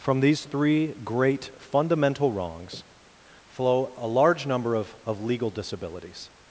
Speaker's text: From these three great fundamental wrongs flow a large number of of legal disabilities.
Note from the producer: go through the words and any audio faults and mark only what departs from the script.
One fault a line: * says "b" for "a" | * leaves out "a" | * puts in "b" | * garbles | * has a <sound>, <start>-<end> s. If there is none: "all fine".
all fine